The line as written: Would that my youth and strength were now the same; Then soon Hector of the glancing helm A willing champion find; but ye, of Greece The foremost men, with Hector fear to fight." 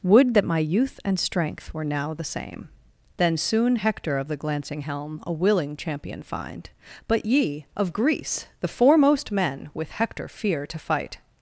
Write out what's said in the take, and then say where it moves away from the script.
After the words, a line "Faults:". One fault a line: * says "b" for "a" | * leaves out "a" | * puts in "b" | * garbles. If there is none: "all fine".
Would that my youth and strength were now the same; Then soon Hector of the glancing helm A willing champion find; but ye, of Greece The foremost men, with Hector fear to fight."
Faults:
all fine